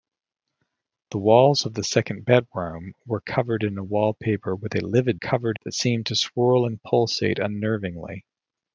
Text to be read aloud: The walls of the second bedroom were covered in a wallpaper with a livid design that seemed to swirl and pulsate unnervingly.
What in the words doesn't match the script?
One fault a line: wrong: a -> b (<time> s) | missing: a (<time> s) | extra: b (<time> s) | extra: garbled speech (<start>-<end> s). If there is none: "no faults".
wrong: design -> covered (5.1 s)